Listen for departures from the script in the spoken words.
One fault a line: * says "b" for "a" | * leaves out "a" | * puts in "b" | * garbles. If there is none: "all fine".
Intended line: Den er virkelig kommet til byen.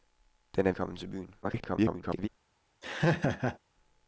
* leaves out "virkelig"
* garbles